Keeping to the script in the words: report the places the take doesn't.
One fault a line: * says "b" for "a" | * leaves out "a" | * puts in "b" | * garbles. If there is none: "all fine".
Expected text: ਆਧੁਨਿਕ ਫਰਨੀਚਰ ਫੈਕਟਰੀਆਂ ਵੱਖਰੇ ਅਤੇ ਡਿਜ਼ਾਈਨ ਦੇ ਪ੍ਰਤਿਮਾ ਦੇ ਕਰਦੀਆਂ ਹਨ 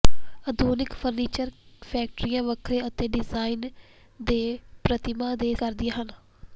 all fine